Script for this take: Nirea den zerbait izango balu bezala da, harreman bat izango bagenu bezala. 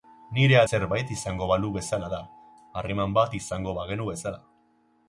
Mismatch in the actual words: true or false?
true